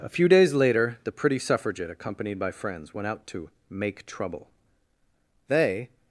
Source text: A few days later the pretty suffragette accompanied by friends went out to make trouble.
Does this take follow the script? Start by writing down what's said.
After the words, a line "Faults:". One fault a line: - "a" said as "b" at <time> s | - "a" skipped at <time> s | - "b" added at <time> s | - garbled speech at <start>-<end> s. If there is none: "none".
A few days later the pretty suffragette accompanied by friends went out to make trouble. They
Faults:
- "They" added at 5.5 s